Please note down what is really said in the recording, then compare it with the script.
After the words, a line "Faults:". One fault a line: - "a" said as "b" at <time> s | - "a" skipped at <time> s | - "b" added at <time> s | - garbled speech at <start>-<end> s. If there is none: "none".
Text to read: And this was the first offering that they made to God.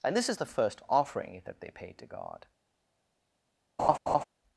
And this is the first offering that they paid to God.
Faults:
- "was" said as "is" at 0.3 s
- "made" said as "paid" at 1.7 s